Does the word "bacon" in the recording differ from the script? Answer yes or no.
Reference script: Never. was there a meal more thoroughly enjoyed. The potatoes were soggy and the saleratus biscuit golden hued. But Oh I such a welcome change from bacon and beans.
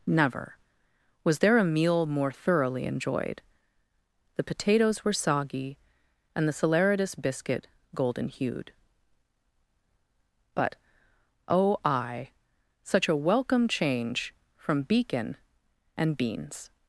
yes